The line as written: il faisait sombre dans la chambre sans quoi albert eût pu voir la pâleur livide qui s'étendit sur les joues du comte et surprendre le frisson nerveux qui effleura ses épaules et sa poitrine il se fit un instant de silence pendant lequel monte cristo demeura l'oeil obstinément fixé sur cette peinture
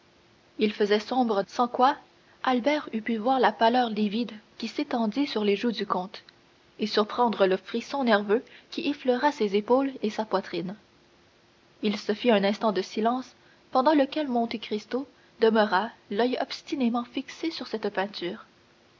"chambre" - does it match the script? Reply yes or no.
no